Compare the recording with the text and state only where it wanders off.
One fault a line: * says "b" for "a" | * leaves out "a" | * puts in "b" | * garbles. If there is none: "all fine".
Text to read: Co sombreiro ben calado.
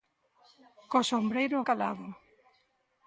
* leaves out "ben"